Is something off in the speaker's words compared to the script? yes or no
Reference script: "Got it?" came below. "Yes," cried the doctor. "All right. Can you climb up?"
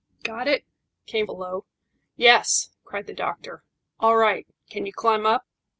no